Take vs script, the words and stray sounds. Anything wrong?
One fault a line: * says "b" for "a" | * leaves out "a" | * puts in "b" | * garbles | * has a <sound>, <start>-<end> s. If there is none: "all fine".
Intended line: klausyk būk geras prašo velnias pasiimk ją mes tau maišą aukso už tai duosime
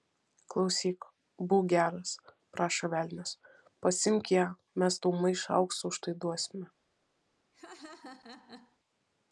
* has a laugh, 7.5-8.8 s